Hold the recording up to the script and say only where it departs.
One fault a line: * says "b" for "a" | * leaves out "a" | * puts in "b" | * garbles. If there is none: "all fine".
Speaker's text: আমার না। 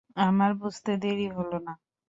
* puts in "বুঝতে দেরি হল"